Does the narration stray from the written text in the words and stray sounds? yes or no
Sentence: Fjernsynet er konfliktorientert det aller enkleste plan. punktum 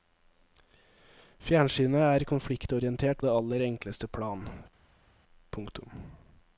no